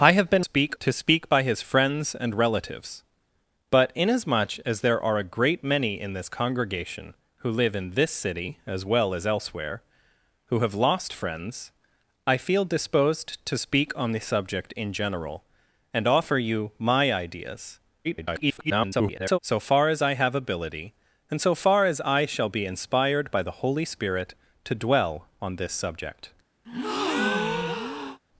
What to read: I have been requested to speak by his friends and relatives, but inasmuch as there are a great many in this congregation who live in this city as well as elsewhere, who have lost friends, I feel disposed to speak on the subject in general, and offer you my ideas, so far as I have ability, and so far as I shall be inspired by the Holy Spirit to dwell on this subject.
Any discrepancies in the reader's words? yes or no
yes